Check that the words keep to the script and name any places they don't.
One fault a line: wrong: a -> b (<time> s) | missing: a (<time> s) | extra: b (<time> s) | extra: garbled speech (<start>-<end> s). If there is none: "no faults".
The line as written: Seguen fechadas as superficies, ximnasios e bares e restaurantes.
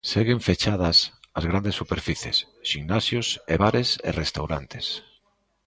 extra: grandes (1.4 s)